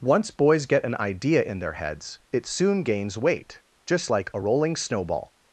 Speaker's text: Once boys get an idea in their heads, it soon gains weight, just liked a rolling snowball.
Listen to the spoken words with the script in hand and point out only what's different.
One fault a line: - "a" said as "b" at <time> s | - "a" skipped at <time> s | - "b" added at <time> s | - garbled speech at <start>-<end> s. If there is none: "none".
- "liked" said as "like" at 4.1 s